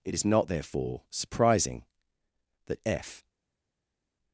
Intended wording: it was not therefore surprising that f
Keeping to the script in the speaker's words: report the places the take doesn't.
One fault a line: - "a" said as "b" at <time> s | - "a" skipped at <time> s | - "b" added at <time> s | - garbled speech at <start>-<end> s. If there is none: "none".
- "was" said as "is" at 0.1 s